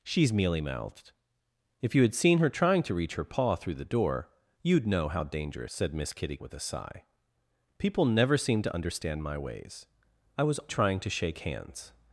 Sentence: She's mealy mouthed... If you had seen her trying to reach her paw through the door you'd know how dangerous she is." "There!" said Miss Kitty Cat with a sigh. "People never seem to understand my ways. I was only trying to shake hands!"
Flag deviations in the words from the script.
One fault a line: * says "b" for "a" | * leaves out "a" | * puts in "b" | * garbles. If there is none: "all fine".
* leaves out "she is There"
* leaves out "Cat"
* leaves out "only"